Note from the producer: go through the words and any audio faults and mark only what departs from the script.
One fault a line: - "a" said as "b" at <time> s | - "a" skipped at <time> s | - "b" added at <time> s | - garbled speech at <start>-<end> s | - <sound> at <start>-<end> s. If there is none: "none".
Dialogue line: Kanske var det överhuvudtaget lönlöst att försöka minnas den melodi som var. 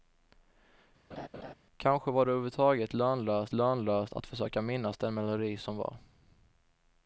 - laugh at 1.1-1.5 s
- "lönlöst" added at 3.5 s